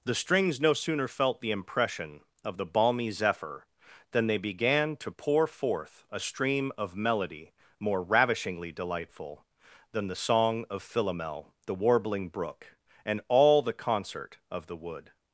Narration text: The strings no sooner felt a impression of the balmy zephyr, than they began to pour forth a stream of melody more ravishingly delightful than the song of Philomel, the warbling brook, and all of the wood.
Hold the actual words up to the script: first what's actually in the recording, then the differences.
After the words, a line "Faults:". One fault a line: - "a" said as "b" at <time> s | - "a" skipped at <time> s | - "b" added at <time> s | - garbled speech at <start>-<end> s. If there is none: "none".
The strings no sooner felt the impression of the balmy zephyr, than they began to pour forth a stream of melody more ravishingly delightful than the song of Philomel, the warbling brook, and all the concert of the wood.
Faults:
- "a" said as "the" at 1.4 s
- "the concert" added at 13.6 s